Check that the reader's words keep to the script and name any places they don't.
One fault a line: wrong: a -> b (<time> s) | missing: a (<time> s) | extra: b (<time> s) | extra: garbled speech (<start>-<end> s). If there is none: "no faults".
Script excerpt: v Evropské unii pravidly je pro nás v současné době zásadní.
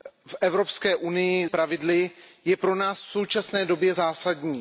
no faults